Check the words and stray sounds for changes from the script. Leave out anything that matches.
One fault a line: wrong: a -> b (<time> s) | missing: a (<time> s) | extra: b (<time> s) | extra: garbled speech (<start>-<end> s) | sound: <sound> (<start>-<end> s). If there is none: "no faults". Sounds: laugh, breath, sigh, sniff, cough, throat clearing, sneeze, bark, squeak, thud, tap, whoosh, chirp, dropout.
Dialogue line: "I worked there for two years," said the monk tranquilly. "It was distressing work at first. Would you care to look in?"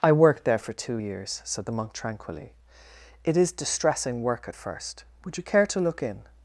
wrong: was -> is (3.4 s)